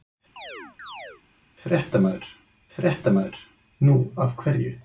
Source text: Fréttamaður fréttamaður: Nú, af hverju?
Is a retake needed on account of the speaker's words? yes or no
no